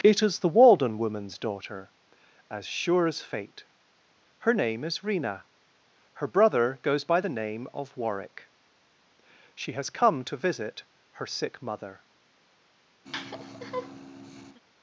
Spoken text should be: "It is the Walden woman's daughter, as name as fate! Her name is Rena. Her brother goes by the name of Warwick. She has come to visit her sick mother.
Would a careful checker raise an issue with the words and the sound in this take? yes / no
yes